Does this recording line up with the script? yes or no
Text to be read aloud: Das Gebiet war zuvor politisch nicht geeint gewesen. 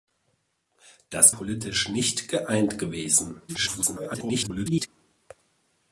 no